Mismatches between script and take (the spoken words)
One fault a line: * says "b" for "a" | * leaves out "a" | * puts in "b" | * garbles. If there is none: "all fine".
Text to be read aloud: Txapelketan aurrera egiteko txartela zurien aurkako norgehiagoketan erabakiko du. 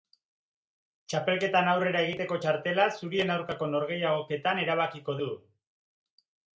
all fine